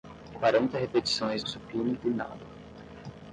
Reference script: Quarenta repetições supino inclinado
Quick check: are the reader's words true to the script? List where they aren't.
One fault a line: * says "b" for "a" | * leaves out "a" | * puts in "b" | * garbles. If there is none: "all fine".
all fine